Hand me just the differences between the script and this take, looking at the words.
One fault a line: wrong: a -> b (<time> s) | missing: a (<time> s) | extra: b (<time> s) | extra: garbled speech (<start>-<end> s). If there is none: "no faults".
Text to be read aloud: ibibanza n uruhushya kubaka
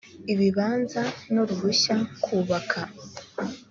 no faults